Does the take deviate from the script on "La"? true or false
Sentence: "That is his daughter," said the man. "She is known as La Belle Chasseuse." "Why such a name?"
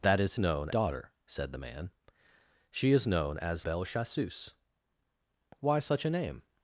true